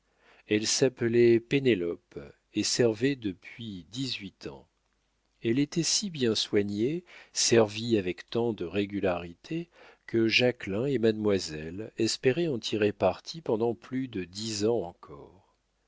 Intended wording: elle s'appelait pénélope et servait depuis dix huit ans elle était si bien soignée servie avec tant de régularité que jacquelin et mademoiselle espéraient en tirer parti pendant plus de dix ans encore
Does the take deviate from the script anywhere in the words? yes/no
no